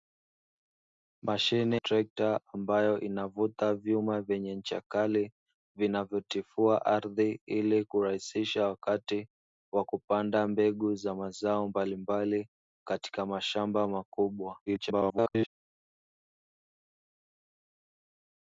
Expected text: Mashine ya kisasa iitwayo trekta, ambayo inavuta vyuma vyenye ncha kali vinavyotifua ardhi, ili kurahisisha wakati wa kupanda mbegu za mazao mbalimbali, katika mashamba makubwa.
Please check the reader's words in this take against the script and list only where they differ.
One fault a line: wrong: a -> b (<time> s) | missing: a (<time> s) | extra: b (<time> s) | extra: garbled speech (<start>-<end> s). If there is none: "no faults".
missing: ya kisasa iitwayo (1.8 s)
extra: garbled speech (14.7-15.5 s)